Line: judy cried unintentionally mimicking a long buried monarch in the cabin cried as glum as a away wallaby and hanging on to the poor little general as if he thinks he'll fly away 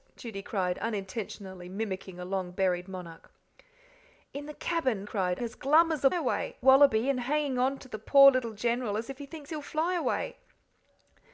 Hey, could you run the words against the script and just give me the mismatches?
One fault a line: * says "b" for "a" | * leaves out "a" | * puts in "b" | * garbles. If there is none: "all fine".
all fine